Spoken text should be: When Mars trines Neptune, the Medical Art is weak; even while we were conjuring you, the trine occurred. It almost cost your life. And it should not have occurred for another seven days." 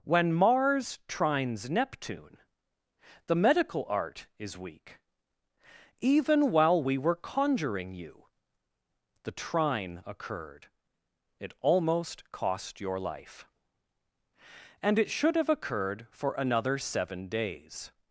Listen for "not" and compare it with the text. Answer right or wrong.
wrong